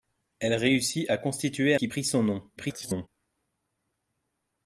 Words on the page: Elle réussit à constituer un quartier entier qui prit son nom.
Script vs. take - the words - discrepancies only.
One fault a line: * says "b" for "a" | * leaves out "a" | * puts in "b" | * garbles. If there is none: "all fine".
* leaves out "un quartier entier"
* garbles